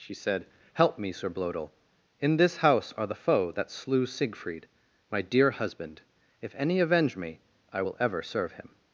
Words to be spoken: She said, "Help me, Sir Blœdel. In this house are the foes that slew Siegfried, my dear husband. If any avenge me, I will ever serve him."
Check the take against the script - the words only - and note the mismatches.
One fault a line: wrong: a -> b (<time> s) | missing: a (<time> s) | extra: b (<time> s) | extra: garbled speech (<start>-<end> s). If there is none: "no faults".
wrong: foes -> foe (3.1 s)